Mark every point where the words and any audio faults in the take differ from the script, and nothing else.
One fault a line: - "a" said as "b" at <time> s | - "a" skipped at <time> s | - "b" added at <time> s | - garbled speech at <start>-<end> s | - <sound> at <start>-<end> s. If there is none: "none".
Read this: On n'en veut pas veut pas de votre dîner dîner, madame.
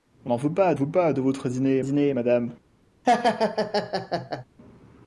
- laugh at 3.0-4.4 s